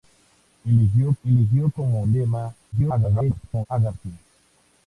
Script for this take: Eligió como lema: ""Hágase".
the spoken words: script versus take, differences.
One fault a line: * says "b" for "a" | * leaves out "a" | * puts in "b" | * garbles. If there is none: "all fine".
* puts in "eligió"
* garbles